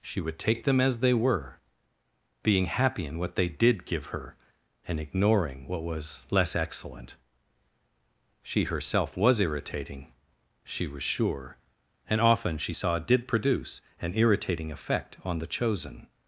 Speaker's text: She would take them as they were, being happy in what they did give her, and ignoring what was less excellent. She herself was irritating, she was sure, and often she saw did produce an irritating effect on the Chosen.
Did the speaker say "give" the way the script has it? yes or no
yes